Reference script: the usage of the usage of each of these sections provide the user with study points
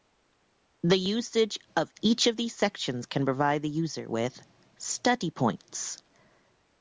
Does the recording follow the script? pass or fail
fail